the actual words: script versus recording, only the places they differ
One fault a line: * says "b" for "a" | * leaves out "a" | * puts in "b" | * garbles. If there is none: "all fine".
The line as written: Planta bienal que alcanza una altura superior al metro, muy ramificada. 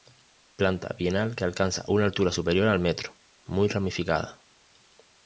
all fine